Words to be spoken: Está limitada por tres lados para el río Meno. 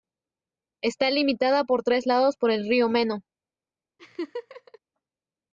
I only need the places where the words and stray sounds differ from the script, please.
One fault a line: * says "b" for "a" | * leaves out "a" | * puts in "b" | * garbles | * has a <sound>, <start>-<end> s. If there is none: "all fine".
* says "por" for "para"
* has a laugh, 4.0-4.8 s